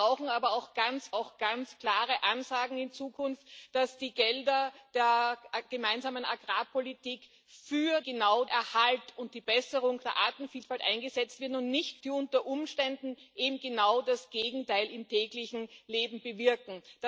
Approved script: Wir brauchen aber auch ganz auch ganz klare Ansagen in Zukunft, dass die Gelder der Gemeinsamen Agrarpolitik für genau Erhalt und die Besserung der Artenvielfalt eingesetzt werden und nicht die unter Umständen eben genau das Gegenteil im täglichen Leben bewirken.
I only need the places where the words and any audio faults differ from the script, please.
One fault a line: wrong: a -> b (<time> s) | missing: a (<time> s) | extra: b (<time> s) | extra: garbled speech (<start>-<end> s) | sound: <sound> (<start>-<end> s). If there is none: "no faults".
no faults